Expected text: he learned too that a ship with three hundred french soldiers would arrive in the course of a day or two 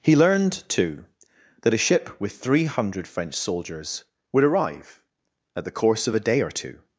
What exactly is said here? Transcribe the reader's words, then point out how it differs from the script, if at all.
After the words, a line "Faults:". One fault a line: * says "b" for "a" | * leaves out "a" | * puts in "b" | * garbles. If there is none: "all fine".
he learned too that a ship with three hundred french soldiers would arrive at the course of a day or two
Faults:
* says "at" for "in"